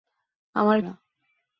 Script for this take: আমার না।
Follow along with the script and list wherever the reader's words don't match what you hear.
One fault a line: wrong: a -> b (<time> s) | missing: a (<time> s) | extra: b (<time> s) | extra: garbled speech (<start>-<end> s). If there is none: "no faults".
no faults